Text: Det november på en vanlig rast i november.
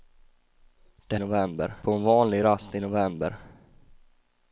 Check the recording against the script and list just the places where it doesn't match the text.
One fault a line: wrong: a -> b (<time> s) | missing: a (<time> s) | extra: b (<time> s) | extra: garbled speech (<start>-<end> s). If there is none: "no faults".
no faults